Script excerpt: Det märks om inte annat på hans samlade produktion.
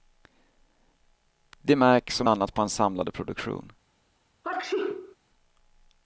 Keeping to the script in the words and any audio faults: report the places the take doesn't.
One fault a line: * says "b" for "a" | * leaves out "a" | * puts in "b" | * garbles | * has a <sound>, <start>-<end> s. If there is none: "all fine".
* leaves out "inte"
* has a sneeze, 4.4-5.2 s